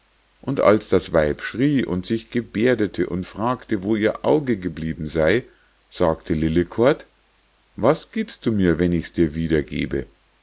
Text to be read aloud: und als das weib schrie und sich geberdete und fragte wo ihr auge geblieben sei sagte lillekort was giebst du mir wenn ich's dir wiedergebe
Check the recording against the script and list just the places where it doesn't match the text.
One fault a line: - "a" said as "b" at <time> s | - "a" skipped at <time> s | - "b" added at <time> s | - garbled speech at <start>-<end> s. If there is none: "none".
none